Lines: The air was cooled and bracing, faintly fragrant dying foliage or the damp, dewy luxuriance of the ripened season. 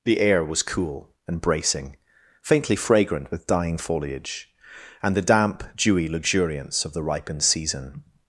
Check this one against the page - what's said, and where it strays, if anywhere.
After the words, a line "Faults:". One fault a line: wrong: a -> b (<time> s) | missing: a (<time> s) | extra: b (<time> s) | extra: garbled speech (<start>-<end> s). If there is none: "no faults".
The air was cool and bracing, faintly fragrant with dying foliage and the damp, dewy luxuriance of the ripened season.
Faults:
wrong: cooled -> cool (0.6 s)
extra: with (3.3 s)
wrong: or -> and (5.0 s)